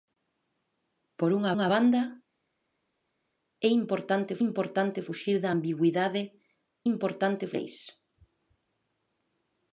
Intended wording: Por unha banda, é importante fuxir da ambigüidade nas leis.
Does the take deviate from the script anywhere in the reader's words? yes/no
yes